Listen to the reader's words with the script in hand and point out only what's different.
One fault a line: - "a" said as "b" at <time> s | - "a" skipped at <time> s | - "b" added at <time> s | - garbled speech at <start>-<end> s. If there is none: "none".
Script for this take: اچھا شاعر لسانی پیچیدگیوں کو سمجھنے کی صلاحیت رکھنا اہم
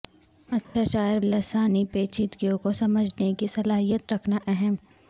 none